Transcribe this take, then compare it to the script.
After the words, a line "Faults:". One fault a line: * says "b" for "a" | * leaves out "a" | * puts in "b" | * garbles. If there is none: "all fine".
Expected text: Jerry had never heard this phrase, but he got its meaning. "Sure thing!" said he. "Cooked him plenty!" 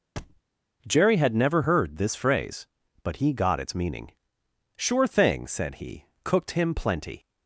Jerry had never heard this phrase, but he got its meaning. "Sure thing!" said he. "Cooked him plenty!"
Faults:
all fine